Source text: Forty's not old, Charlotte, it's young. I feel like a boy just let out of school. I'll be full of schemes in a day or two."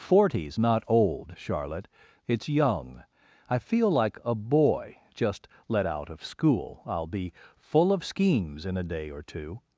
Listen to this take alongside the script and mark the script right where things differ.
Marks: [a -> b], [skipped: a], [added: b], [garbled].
Forty's not old, Charlotte, it's young. I feel like a boy just let out of school. I'll be full of schemes in a day or two."